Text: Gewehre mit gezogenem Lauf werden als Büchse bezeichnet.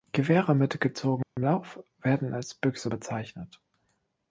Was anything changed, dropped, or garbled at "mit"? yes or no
no